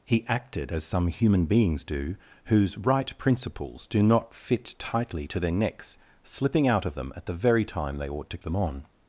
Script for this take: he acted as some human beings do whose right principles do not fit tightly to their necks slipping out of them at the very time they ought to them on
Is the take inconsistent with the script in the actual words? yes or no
no